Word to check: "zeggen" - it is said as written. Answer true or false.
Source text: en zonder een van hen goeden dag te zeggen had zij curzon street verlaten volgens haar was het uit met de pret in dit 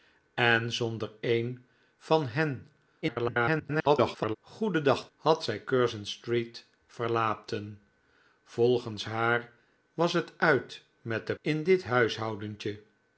false